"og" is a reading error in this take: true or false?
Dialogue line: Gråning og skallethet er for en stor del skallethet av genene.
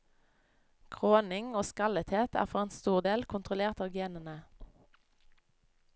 false